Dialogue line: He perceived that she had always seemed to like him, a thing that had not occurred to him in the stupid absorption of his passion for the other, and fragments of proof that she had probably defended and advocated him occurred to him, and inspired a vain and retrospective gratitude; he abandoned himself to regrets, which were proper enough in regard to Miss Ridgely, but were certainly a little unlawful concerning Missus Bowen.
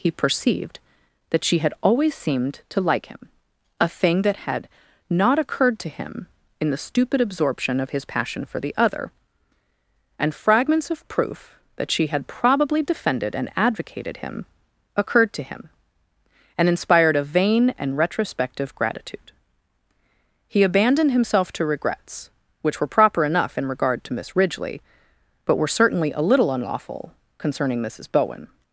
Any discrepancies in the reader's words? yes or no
no